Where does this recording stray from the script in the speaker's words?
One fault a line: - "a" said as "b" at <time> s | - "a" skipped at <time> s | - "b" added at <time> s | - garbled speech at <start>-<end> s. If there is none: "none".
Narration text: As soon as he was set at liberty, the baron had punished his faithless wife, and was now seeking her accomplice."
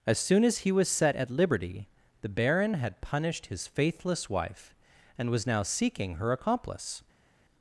none